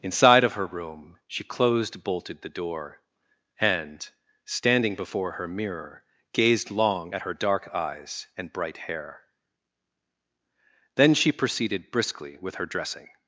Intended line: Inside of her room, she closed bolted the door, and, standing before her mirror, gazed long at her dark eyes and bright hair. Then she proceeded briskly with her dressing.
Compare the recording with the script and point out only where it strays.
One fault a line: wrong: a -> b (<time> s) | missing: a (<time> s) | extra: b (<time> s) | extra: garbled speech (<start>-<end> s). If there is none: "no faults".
no faults